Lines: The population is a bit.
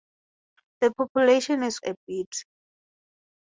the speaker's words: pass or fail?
pass